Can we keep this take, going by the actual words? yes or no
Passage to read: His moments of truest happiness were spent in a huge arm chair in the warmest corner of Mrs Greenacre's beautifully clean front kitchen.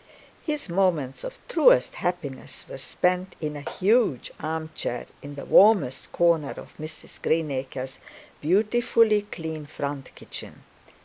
yes